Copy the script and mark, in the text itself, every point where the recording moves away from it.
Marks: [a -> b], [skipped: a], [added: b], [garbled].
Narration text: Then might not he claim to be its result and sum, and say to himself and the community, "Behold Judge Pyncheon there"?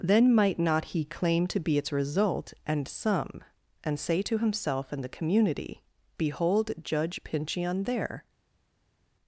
Then might not he claim to be its result and sum, and say to himself and the community, "Behold Judge Pyncheon there"?